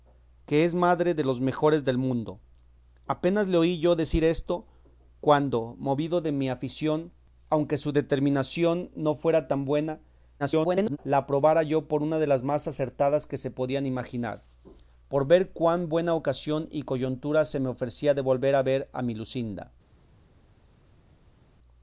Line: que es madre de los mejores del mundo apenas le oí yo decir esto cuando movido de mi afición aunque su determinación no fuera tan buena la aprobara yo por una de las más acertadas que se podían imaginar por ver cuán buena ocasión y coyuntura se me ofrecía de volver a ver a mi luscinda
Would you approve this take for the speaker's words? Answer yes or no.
no